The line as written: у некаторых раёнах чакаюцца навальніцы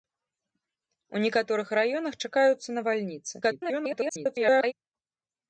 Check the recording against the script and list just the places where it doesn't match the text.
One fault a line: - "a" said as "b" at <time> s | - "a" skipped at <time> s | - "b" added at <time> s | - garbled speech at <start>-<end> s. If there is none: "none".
- garbled speech at 3.4-4.7 s